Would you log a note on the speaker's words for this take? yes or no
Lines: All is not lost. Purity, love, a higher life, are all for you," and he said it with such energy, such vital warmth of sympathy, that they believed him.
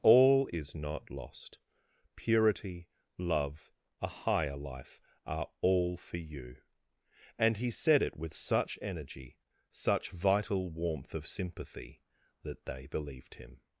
no